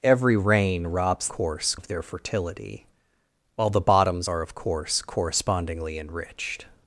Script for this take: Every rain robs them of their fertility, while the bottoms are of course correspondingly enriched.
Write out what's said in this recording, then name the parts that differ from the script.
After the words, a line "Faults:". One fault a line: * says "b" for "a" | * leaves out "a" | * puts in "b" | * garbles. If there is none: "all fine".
Every rain robs course of their fertility, while the bottoms are of course correspondingly enriched.
Faults:
* says "course" for "them"